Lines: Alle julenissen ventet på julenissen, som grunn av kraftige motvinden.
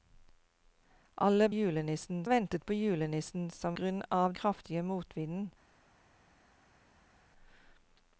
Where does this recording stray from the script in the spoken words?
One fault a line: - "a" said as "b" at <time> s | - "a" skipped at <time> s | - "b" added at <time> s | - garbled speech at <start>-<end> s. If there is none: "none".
none